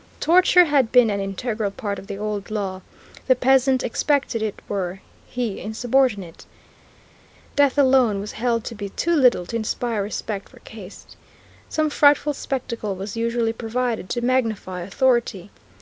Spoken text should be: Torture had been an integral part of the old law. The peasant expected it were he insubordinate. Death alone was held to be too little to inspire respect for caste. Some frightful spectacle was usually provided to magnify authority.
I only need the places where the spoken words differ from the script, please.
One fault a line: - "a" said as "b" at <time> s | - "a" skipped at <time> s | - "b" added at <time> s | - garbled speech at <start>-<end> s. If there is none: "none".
none